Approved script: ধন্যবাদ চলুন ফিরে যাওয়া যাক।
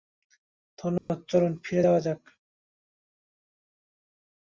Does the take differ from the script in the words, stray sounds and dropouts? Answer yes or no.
yes